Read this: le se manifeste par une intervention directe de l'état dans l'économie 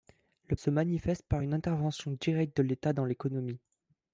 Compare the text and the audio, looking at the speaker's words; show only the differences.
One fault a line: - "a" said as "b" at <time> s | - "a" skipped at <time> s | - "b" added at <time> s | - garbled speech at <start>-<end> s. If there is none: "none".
none